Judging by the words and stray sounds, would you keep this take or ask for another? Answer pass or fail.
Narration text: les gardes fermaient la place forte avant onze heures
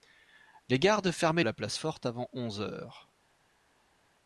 pass